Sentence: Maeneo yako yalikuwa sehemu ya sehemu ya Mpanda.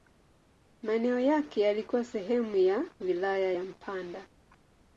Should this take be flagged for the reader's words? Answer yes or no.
yes